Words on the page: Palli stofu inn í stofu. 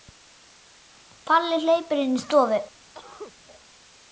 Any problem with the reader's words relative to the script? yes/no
yes